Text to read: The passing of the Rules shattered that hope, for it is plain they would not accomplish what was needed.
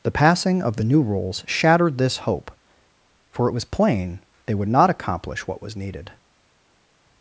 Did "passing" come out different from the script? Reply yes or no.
no